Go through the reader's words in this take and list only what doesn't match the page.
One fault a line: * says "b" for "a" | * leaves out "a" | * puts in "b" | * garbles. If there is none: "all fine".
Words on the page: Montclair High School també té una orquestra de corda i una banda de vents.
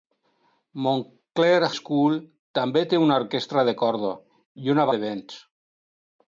* leaves out "High"
* leaves out "banda"